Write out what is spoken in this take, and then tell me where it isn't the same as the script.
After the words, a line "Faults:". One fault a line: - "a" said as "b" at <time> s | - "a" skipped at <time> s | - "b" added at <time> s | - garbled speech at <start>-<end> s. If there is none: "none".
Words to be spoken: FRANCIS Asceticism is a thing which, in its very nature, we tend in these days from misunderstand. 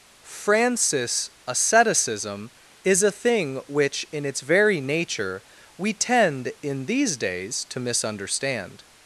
FRANCIS Asceticism is a thing which, in its very nature, we tend in these days to misunderstand.
Faults:
- "from" said as "to" at 7.7 s